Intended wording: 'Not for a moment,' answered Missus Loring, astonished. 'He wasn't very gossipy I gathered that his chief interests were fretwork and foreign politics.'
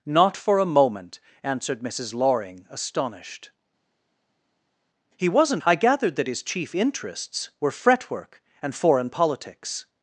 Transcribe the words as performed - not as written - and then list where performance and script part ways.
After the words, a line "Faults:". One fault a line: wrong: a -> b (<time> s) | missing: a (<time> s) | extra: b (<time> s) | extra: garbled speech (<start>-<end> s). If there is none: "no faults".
'Not for a moment,' answered Missus Loring, astonished. 'He wasn't I gathered that his chief interests were fretwork and foreign politics.'
Faults:
missing: very gossipy (5.6 s)